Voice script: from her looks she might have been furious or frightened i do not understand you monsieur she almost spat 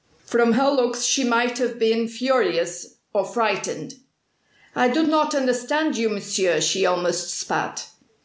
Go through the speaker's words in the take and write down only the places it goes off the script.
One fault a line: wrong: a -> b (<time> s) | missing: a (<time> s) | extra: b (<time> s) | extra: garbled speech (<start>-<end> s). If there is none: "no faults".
no faults